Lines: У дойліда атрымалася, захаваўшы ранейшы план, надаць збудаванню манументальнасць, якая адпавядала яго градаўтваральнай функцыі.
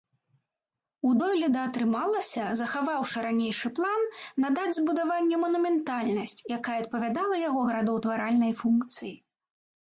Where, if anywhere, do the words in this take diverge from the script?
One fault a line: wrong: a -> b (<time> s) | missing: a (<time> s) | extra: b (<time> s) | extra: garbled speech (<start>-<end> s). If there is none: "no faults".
no faults